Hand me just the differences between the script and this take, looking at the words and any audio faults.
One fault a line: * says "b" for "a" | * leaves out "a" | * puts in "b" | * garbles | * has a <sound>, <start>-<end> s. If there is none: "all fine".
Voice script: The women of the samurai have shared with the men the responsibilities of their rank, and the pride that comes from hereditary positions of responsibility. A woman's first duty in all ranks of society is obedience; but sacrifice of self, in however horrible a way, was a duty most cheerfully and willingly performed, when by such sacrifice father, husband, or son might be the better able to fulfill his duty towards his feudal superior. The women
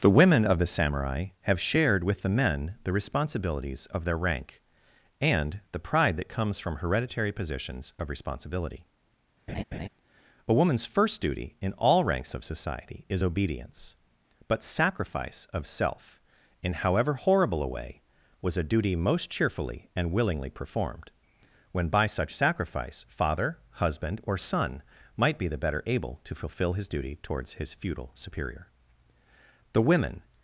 * has a laugh, 9.5-9.9 s